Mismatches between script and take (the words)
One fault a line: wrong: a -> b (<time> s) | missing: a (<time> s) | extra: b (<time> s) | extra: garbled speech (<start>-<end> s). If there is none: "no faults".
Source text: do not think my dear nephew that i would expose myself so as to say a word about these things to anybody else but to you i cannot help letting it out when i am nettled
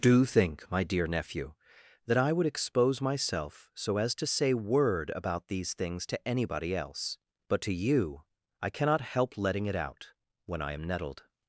missing: not (0.2 s)
missing: a (4.5 s)